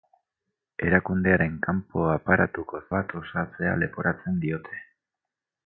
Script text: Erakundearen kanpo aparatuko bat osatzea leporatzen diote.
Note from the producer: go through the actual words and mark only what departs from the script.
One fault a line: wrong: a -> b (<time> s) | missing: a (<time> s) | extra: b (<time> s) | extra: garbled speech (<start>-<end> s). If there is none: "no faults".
no faults